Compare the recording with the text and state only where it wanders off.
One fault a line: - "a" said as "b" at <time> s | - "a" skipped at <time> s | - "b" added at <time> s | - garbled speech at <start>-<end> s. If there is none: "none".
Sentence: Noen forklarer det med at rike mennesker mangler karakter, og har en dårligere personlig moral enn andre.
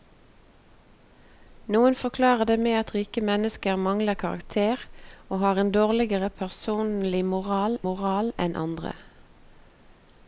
- "moral" added at 7.9 s